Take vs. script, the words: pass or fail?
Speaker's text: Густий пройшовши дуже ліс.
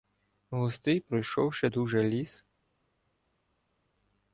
pass